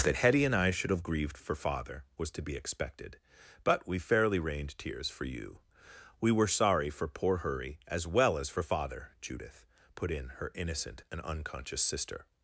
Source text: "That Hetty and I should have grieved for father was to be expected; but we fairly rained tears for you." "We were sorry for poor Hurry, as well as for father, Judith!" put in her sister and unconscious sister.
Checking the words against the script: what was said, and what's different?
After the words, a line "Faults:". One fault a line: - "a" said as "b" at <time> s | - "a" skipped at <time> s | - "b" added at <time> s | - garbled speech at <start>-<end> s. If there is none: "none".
"That Hetty and I should have grieved for father was to be expected; but we fairly rained tears for you." "We were sorry for poor Hurry, as well as for father, Judith!" put in her innocent and unconscious sister.
Faults:
- "sister" said as "innocent" at 10.5 s